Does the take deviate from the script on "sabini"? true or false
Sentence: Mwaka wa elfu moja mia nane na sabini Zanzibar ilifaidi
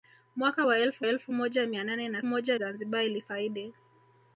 true